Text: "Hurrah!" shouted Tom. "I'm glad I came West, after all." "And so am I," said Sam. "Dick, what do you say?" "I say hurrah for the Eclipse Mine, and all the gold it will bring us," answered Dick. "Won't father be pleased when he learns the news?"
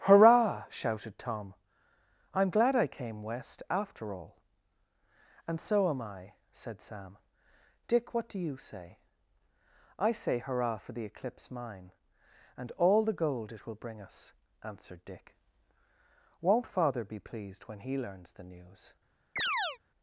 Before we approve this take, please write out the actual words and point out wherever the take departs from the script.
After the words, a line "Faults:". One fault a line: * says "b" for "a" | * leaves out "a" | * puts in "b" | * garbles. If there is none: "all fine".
"Hurrah!" shouted Tom. "I'm glad I came West, after all." "And so am I," said Sam. "Dick, what do you say?" "I say hurrah for the Eclipse Mine, and all the gold it will bring us," answered Dick. "Won't father be pleased when he learns the news?"
Faults:
all fine